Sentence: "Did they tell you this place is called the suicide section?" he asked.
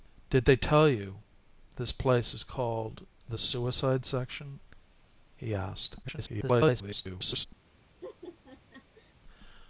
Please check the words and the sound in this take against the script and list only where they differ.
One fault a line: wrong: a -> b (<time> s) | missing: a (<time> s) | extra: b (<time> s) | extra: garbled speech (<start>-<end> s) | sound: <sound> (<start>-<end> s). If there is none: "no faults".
extra: garbled speech (6.0-7.5 s)
sound: laugh (8.0-9.1 s)